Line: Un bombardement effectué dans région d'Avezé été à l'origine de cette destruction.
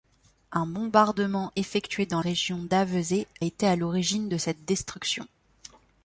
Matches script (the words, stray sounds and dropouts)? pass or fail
pass